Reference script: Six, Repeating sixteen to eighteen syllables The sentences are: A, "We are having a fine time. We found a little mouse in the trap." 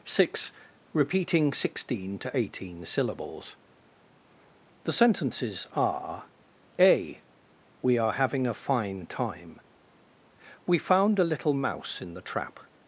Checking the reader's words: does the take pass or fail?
pass